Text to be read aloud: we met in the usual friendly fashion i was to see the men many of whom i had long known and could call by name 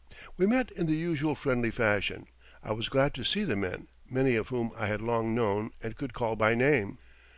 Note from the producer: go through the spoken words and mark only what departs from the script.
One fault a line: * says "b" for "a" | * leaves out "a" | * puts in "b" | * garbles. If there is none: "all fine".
* puts in "glad"